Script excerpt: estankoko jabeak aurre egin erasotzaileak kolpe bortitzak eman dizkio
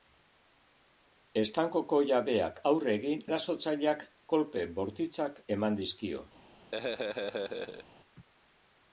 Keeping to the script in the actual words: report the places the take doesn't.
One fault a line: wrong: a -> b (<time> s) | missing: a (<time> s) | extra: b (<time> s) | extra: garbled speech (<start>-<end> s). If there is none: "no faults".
no faults